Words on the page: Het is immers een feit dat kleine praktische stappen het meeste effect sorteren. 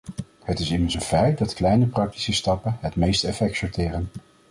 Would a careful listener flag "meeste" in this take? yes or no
no